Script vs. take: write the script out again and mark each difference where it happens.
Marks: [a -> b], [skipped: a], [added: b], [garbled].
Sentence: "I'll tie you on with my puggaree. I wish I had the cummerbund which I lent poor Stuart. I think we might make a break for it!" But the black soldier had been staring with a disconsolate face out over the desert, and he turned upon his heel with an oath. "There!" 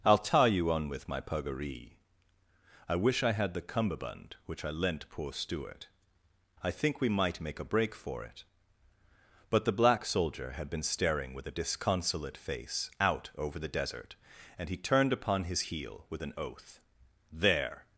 "I'll tie you on with my puggaree. I wish I had the cummerbund which I lent poor Stuart. I think we might make a break for it!" But the black soldier had been staring with a disconsolate face out over the desert, and he turned upon his heel with an oath. "There!"